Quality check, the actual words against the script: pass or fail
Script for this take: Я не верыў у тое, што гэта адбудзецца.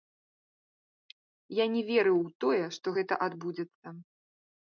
pass